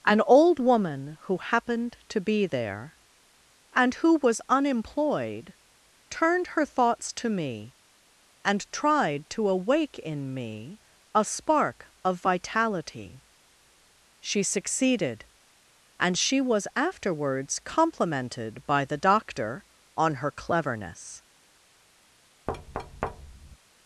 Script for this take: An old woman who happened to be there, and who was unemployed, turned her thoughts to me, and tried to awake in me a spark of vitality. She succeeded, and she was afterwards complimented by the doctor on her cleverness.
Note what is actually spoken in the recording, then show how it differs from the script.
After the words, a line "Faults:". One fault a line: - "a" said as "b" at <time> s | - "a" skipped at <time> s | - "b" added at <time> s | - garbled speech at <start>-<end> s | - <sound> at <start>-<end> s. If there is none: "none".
An old woman who happened to be there, and who was unemployed, turned her thoughts to me, and tried to awake in me a spark of vitality. She succeeded, and she was afterwards complimented by the doctor on her cleverness.
Faults:
- thud at 22.5-23.6 s